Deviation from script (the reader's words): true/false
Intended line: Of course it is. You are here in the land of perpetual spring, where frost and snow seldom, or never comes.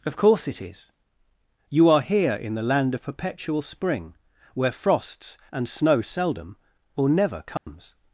true